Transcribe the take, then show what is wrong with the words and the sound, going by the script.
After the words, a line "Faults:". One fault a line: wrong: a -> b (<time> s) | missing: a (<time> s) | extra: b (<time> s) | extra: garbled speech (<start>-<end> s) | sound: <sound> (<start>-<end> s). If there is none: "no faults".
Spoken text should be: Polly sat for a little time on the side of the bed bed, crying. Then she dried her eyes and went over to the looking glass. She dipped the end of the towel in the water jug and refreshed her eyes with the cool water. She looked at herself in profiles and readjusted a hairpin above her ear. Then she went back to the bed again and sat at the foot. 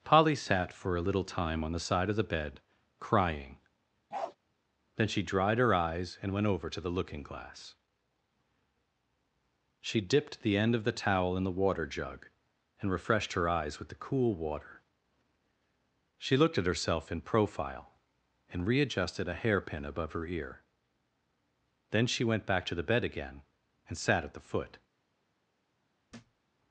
Polly sat for a little time on the side of the bed, crying. Then she dried her eyes and went over to the looking glass. She dipped the end of the towel in the water jug and refreshed her eyes with the cool water. She looked at herself in profile and readjusted a hairpin above her ear. Then she went back to the bed again and sat at the foot.
Faults:
missing: bed (2.6 s)
sound: bark (4.1-4.4 s)
wrong: profiles -> profile (17.2 s)
sound: thud (26.1-26.4 s)